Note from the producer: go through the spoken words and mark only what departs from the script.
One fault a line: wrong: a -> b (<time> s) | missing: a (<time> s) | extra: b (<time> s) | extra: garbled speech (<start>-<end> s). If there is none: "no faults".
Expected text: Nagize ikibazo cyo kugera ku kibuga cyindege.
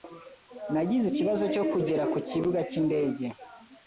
no faults